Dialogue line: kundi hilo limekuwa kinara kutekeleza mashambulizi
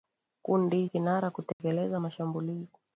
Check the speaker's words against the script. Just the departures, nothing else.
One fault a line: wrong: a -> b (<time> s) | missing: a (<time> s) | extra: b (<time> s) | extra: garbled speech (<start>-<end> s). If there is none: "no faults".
missing: hilo limekuwa (0.9 s)